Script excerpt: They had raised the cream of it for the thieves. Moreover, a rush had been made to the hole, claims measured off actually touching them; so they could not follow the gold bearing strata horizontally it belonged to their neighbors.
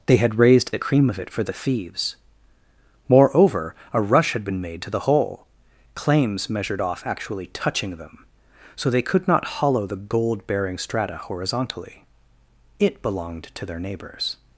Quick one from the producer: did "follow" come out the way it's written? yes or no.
no